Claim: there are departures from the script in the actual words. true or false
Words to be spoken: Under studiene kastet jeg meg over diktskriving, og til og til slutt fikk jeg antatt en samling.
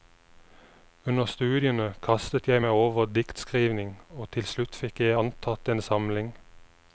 true